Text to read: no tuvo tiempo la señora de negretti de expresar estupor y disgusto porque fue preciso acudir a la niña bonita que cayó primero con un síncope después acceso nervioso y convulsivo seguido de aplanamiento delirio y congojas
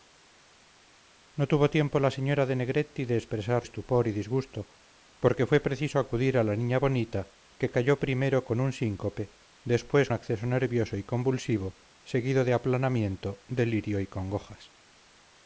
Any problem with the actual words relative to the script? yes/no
no